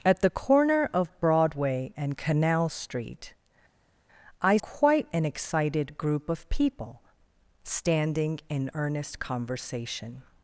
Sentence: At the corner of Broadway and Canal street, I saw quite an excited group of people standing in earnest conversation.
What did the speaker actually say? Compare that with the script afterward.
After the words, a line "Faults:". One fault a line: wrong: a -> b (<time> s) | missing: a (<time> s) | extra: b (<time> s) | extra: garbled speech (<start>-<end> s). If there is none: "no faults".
At the corner of Broadway and Canal street, I quite an excited group of people standing in earnest conversation.
Faults:
missing: saw (4.6 s)